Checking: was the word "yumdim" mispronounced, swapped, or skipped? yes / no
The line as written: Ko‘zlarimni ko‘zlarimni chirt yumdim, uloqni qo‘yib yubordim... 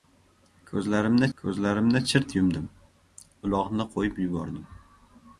no